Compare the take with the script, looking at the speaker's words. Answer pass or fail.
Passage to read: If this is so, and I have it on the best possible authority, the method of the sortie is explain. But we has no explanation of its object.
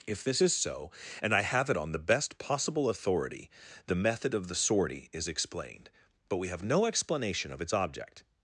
fail